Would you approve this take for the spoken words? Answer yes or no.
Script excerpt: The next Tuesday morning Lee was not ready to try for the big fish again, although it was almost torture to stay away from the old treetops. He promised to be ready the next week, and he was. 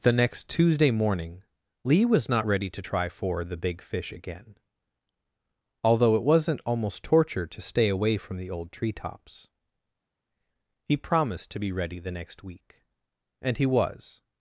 no